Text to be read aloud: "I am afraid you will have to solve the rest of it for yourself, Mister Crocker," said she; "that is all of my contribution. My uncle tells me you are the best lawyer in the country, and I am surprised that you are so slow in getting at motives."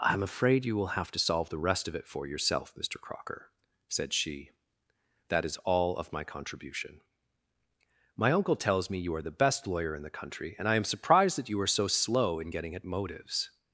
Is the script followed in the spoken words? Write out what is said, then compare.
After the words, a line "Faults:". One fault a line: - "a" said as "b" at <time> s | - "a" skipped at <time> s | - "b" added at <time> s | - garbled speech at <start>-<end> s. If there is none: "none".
"I am afraid you will have to solve the rest of it for yourself, Mister Crocker," said she; "that is all of my contribution. My uncle tells me you are the best lawyer in the country, and I am surprised that you are so slow in getting at motives."
Faults:
none